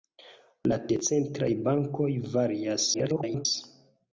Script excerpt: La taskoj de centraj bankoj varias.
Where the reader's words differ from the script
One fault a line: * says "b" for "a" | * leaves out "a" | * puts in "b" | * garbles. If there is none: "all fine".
* leaves out "taskoj"
* garbles